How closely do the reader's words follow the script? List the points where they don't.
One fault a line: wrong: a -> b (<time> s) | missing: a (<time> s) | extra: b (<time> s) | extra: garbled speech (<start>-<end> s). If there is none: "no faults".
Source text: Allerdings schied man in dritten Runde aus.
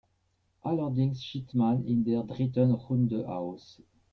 extra: der (2.0 s)